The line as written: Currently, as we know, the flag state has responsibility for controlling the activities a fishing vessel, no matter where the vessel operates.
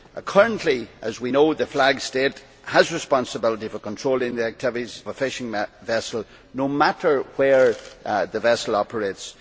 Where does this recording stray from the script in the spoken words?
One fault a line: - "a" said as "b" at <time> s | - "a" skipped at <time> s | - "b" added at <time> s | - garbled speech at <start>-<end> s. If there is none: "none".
none